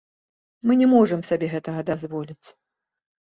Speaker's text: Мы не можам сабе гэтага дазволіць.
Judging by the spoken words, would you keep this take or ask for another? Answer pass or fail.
pass